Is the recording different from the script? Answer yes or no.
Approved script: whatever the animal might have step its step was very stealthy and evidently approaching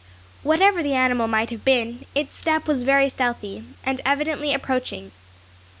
yes